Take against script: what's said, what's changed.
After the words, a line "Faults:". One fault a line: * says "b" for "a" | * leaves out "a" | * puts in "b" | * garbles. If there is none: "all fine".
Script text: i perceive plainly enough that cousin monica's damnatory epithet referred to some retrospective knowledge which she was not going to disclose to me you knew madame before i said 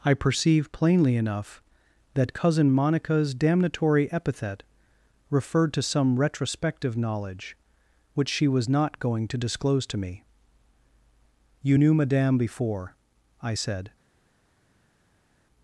i perceive plainly enough that cousin monica's damnatory epithet referred to some retrospective knowledge which she was not going to disclose to me you knew madame before i said
Faults:
all fine